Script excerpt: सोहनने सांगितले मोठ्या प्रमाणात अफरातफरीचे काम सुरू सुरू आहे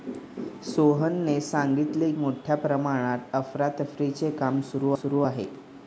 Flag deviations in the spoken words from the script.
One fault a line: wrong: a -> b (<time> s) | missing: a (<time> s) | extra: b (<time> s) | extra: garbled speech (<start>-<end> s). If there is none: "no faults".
no faults